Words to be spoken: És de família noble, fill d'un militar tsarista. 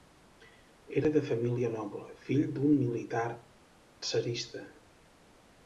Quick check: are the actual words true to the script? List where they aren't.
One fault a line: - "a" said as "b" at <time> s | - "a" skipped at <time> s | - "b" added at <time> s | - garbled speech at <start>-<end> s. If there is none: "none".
- "És" said as "Era" at 1.0 s